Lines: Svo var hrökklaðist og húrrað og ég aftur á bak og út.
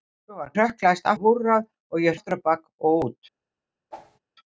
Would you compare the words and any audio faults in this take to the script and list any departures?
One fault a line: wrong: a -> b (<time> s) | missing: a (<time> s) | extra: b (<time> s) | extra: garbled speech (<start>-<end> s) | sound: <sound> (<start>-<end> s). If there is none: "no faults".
sound: whoosh (3.9-4.2 s)